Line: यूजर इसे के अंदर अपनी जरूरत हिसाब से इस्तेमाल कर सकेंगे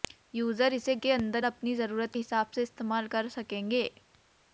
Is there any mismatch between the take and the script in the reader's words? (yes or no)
no